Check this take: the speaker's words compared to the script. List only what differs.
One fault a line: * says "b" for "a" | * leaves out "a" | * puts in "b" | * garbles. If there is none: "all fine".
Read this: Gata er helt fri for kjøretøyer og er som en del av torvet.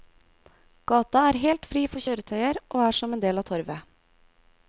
all fine